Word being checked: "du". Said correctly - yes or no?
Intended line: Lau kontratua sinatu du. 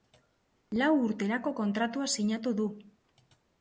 yes